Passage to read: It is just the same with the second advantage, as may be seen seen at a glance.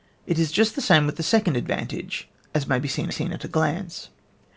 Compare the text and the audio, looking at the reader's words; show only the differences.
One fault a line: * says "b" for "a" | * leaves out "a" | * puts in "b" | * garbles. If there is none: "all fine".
all fine